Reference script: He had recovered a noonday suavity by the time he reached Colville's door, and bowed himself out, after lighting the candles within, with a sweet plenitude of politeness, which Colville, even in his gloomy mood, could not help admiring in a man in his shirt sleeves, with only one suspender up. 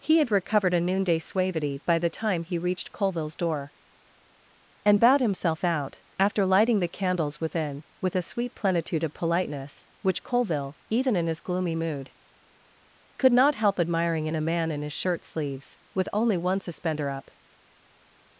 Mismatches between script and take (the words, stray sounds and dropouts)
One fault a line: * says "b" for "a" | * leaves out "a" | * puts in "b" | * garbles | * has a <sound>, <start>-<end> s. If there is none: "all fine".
all fine